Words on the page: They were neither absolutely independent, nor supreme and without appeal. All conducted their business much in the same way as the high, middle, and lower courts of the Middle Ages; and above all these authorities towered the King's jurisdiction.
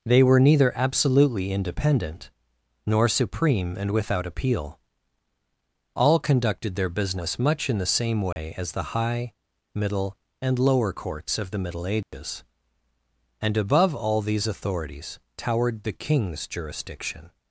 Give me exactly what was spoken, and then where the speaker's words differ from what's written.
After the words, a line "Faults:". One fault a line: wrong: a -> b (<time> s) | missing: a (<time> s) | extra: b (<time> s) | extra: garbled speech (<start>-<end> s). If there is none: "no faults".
They were neither absolutely independent, nor supreme and without appeal. All conducted their business much in the same way as the high, middle, and lower courts of the Middle Ages; and above all these authorities towered the King's jurisdiction.
Faults:
no faults